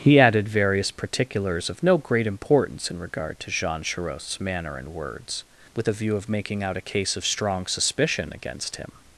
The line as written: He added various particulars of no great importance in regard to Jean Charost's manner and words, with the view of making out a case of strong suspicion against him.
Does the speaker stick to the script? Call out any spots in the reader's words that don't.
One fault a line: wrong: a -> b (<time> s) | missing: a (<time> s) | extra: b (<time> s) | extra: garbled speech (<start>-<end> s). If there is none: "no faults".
no faults